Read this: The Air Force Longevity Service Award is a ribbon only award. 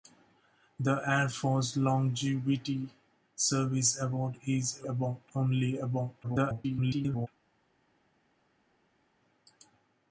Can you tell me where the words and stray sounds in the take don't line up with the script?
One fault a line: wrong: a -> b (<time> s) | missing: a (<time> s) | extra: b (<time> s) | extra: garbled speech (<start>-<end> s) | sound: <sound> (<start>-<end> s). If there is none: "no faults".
wrong: ribbon -> award (4.8 s)
extra: garbled speech (6.2-7.3 s)